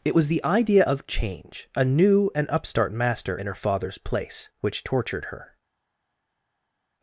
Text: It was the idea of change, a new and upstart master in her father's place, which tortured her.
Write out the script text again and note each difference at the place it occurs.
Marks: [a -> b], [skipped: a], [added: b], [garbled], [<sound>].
It was the idea of change, a new and upstart master in her father's place, which tortured her.